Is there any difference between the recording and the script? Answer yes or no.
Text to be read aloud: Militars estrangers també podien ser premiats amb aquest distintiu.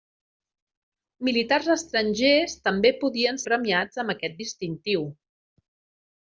yes